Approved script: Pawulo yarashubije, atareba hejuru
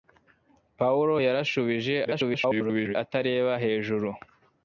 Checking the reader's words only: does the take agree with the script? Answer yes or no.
no